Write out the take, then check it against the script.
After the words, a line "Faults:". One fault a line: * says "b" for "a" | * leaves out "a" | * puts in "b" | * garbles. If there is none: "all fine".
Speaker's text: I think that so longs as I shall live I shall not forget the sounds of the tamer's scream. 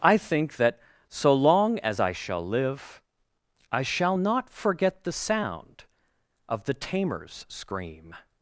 I think that so long as I shall live I shall not forget the sound of the tamer's scream.
Faults:
* says "long" for "longs"
* says "sound" for "sounds"